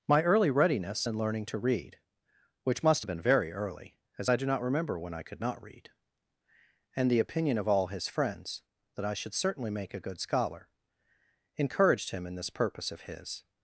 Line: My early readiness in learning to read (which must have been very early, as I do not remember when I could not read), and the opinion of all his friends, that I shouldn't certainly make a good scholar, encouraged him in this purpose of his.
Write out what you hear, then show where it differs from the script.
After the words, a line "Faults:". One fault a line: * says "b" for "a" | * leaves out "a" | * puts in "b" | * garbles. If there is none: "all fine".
My early readiness in learning to read (which must have been very early, as I do not remember when I could not read), and the opinion of all his friends, that I should certainly make a good scholar, encouraged him in this purpose of his.
Faults:
* says "should" for "shouldn't"